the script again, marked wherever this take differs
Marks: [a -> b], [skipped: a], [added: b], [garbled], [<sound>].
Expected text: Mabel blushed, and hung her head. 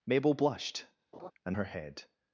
Mabel blushed, [laugh] and [skipped: hung] her head.